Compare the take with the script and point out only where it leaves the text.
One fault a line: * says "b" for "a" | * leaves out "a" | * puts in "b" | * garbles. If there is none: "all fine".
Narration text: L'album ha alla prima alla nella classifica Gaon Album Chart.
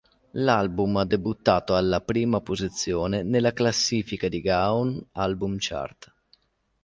* puts in "debuttato"
* says "posizione" for "alla"
* puts in "di"